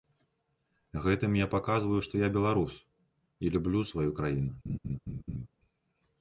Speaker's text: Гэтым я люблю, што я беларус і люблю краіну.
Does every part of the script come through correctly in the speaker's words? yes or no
no